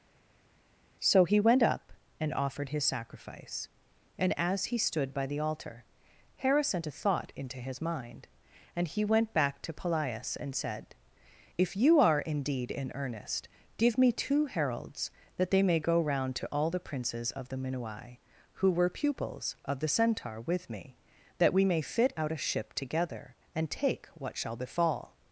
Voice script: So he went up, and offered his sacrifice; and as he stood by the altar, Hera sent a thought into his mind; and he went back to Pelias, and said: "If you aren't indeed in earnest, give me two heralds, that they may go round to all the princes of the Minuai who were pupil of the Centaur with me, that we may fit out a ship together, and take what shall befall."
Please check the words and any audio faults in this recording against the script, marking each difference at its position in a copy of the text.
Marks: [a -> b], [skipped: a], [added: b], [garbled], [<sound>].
So he went up, and offered his sacrifice; and as he stood by the altar, Hera sent a thought into his mind; and he went back to Pelias, and said: "If you [aren't -> are] indeed in earnest, give me two heralds, that they may go round to all the princes of the Minuai who were [pupil -> pupils] of the Centaur with me, that we may fit out a ship together, and take what shall befall."